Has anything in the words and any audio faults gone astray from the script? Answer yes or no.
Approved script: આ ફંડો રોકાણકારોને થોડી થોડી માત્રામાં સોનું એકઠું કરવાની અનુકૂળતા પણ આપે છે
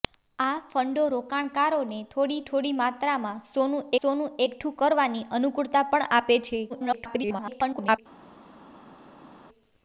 yes